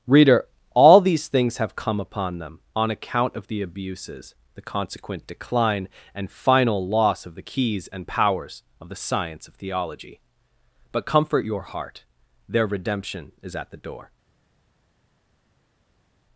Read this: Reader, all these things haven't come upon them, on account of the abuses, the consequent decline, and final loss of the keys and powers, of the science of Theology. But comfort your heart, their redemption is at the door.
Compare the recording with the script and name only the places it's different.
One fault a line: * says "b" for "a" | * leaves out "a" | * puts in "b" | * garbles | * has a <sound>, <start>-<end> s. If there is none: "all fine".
* says "have" for "haven't"